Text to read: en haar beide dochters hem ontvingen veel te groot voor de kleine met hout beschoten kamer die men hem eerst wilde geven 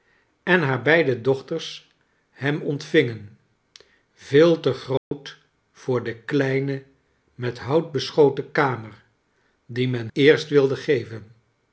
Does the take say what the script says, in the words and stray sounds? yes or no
no